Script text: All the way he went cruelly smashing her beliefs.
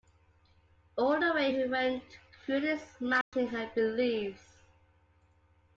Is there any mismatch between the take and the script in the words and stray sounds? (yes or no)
yes